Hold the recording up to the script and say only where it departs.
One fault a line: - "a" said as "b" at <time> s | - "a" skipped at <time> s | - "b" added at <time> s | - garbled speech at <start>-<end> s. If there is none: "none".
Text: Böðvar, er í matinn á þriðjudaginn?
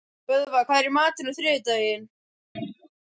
- "hvað" added at 0.7 s